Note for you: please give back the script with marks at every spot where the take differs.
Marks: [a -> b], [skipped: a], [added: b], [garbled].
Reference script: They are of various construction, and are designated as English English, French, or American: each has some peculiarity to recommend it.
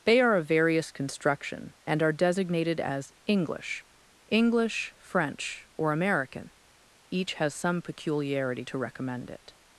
They are of various construction, and are designated as English English, French, or American: each has some peculiarity to recommend it.